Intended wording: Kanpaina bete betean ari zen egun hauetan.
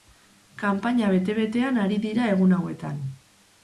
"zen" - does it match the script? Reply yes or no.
no